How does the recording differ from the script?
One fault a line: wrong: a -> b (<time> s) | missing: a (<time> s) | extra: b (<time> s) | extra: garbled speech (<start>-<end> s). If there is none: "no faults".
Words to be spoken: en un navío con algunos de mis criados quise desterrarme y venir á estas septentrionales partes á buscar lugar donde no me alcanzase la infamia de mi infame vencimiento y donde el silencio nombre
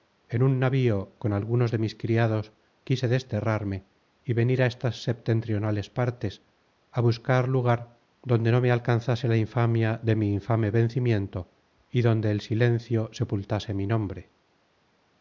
extra: sepultase mi (13.1 s)